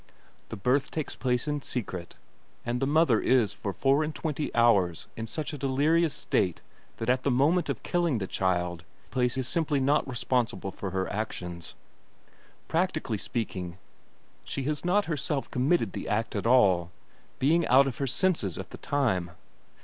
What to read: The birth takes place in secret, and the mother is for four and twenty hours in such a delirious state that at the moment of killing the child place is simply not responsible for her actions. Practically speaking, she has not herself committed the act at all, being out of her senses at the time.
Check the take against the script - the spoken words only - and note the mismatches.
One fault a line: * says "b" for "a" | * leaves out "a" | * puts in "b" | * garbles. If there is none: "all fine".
all fine